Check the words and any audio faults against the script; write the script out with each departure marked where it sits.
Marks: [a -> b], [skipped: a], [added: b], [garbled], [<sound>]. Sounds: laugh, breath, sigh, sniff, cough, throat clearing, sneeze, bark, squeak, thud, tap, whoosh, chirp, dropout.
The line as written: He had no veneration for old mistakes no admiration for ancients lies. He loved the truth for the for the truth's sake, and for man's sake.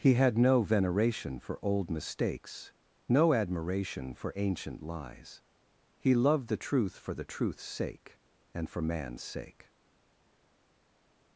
He had no veneration for old mistakes no admiration for [ancients -> ancient] lies. He loved the truth for the [skipped: for the] truth's sake, and for man's sake.